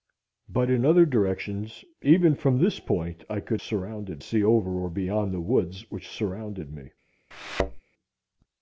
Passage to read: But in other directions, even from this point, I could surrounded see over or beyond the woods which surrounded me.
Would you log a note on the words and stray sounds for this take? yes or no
yes